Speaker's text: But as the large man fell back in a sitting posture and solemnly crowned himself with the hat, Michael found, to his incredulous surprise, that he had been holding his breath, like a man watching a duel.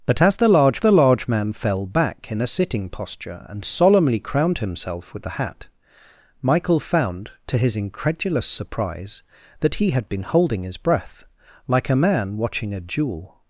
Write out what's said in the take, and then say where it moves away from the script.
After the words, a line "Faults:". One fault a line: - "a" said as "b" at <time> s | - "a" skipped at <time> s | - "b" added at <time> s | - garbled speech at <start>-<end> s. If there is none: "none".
But as the large the large man fell back in a sitting posture and solemnly crowned himself with the hat, Michael found, to his incredulous surprise, that he had been holding his breath, like a man watching a duel.
Faults:
- "the large" added at 0.8 s